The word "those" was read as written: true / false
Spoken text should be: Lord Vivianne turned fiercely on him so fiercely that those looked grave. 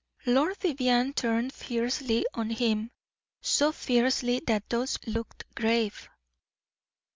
true